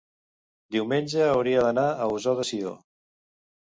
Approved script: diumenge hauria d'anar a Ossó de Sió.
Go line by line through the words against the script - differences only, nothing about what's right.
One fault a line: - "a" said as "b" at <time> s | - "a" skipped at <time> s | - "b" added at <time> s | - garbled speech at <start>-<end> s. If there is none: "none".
none